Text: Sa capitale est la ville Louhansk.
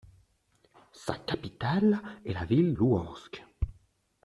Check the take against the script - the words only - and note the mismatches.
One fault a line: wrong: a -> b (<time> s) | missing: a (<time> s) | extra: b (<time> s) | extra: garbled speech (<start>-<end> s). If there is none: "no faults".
no faults